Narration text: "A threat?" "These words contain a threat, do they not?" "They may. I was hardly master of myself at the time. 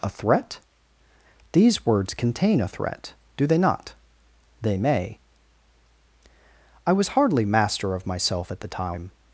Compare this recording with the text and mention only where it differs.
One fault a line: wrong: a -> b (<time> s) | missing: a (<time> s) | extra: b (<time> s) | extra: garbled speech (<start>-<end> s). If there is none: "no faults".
no faults